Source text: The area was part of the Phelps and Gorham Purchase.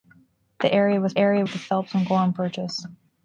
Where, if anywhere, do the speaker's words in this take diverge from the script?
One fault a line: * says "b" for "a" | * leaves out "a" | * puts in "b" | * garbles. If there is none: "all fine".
* says "area" for "part"